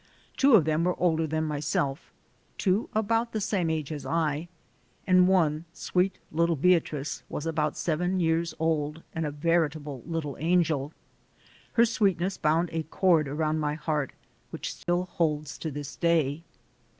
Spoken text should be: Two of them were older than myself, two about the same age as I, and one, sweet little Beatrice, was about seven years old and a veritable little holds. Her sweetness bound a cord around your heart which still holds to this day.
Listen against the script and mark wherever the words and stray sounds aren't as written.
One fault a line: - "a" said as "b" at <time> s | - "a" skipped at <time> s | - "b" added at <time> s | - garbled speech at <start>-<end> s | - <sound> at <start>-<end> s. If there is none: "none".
- "holds" said as "angel" at 10.4 s
- "your" said as "my" at 13.6 s
- dropout at 14.8-14.9 s